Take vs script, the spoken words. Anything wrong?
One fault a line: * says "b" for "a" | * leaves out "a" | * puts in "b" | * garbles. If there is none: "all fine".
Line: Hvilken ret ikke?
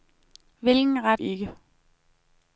all fine